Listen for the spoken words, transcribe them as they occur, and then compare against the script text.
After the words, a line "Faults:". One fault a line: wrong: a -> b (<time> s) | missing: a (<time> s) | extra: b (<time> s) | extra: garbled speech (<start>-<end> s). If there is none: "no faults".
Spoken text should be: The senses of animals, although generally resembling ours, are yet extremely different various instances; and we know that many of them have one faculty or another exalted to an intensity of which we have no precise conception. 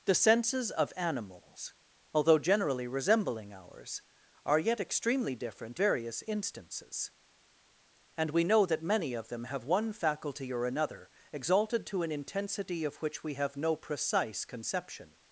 The senses of animals, although generally resembling ours, are yet extremely different various instances; and we know that many of them have one faculty or another exalted to an intensity of which we have no precise conception.
Faults:
no faults